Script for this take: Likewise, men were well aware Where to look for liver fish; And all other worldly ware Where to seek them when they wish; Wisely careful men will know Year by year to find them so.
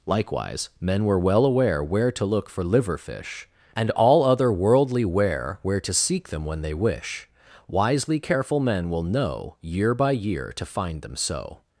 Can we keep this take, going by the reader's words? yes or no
yes